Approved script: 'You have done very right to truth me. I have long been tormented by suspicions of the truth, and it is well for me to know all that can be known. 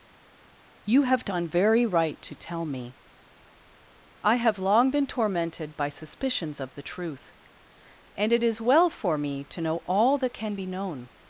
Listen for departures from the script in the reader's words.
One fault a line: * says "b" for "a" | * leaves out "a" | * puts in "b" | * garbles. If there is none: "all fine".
* says "tell" for "truth"